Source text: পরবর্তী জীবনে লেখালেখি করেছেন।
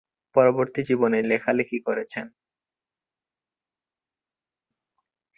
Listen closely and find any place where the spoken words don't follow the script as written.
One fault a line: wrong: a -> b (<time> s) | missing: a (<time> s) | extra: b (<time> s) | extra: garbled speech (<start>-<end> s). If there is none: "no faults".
no faults